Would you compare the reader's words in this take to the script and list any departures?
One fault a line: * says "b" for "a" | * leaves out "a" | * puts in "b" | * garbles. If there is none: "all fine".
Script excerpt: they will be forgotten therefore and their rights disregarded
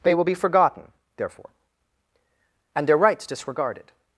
all fine